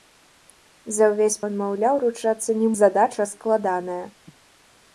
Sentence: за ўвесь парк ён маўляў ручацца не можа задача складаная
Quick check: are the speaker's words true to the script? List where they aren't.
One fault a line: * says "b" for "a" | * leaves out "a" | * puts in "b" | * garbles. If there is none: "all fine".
* leaves out "парк"
* leaves out "можа"